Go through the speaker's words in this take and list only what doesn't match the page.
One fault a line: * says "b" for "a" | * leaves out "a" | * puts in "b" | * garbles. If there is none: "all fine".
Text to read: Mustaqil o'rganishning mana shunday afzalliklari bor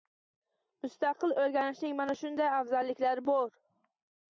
all fine